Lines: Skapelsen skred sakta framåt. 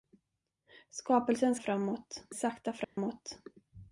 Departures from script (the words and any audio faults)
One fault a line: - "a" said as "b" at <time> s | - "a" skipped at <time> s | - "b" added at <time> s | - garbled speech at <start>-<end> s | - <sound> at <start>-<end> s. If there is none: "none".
- "skred" said as "framåt" at 1.6 s
- dropout at 2.8-3.0 s